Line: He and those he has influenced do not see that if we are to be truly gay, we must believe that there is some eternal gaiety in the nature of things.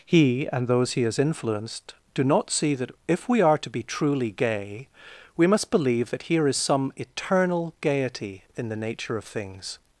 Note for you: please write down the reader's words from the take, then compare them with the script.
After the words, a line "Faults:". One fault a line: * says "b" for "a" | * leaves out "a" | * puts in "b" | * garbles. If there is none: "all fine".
He and those he has influenced do not see that if we are to be truly gay, we must believe that here is some eternal gaiety in the nature of things.
Faults:
* says "here" for "there"